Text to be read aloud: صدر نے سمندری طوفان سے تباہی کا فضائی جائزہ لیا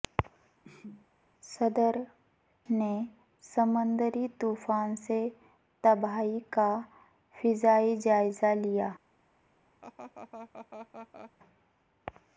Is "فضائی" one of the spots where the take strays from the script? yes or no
no